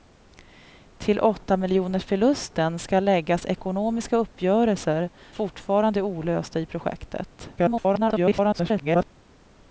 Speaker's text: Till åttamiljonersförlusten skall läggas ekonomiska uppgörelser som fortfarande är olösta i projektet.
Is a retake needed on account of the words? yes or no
yes